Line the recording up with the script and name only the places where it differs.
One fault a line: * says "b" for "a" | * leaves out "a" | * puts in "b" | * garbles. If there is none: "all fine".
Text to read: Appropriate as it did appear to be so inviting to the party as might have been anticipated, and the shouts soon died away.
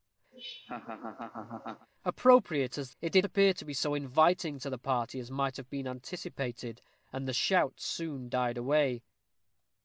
all fine